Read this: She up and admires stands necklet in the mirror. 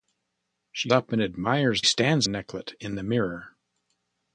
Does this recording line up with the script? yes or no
yes